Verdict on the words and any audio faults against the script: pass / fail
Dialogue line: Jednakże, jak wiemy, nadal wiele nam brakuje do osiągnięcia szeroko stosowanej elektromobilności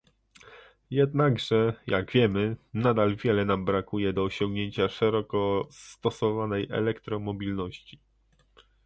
pass